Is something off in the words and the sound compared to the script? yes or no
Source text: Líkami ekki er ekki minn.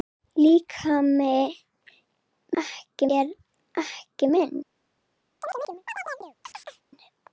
yes